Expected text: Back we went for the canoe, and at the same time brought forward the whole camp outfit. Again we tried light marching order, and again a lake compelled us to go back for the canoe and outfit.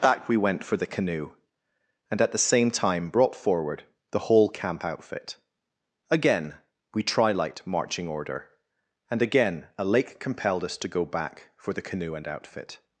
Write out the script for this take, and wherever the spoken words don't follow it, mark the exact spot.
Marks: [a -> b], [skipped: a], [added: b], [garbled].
Back we went for the canoe, and at the same time brought forward the whole camp outfit. Again we [tried -> tri] light marching order, and again a lake compelled us to go back for the canoe and outfit.